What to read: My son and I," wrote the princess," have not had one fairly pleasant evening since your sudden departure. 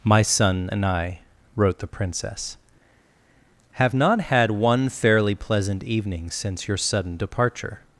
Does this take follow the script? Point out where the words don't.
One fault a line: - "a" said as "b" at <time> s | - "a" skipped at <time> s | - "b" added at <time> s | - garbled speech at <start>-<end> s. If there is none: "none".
none